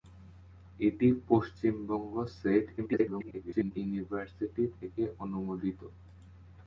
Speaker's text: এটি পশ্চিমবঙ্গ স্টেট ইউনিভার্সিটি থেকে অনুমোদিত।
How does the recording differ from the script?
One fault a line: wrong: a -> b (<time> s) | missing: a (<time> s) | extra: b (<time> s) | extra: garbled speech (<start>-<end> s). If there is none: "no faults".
extra: garbled speech (2.8-3.7 s)